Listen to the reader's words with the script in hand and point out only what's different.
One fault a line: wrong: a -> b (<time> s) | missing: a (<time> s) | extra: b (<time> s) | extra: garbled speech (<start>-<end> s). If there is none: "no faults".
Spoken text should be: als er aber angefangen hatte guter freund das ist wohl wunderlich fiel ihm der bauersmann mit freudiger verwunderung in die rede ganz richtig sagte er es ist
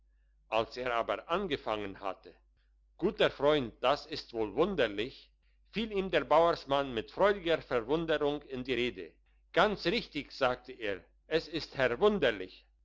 no faults